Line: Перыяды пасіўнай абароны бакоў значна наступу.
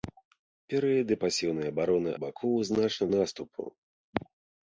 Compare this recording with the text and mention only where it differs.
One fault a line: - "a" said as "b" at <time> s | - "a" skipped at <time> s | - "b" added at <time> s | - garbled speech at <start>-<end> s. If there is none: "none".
none